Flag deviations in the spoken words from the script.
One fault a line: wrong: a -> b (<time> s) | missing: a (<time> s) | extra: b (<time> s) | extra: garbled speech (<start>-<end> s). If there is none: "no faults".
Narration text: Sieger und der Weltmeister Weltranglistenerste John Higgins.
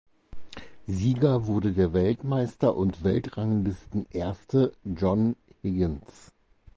wrong: und -> wurde (1.4 s)
extra: und (2.8 s)